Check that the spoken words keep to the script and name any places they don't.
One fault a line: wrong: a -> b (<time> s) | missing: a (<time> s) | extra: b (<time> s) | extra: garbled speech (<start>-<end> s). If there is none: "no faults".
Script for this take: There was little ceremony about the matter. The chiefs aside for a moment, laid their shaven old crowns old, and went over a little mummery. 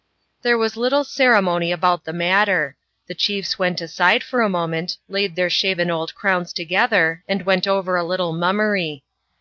extra: went (3.6 s)
wrong: old -> together (6.5 s)